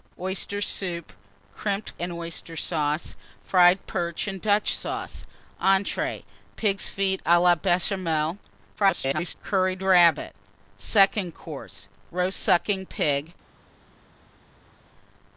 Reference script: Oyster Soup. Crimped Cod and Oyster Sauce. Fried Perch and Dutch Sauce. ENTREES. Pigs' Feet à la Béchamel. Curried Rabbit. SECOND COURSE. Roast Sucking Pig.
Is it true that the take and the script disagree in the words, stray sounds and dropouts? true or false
true